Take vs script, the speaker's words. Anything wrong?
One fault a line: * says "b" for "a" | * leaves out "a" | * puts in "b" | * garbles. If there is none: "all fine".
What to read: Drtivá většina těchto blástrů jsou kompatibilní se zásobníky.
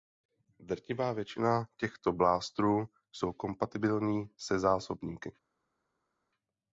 all fine